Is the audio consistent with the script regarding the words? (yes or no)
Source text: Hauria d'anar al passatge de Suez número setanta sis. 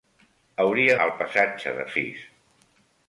no